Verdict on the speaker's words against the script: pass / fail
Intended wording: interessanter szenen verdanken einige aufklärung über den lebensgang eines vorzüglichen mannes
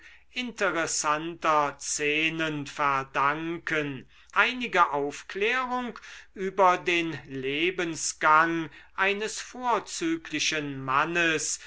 pass